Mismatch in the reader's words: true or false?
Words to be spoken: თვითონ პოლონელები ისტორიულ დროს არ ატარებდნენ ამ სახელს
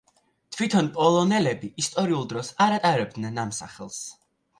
false